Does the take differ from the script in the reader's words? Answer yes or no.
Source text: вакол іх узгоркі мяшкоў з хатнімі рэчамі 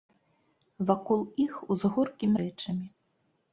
yes